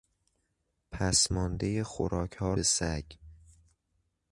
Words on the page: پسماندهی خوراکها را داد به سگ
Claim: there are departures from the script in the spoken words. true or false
true